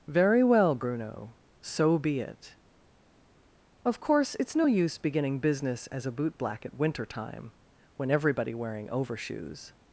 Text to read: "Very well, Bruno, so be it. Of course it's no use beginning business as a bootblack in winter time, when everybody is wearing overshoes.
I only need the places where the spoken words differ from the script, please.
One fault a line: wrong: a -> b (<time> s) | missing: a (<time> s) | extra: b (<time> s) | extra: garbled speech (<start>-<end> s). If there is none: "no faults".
wrong: in -> at (6.6 s)
missing: is (8.5 s)